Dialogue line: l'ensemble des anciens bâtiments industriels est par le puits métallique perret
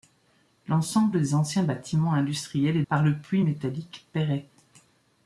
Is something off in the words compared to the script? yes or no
no